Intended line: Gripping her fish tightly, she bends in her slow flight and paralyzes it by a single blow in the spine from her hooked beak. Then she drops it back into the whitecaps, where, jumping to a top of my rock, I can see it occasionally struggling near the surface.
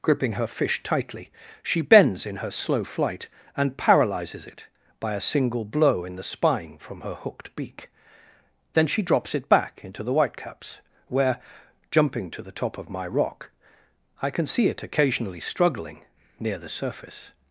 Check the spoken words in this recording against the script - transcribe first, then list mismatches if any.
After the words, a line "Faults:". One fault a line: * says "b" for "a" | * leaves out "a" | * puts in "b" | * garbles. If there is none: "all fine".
Gripping her fish tightly, she bends in her slow flight and paralyzes it by a single blow in the spine from her hooked beak. Then she drops it back into the whitecaps, where, jumping to the top of my rock, I can see it occasionally struggling near the surface.
Faults:
* says "the" for "a"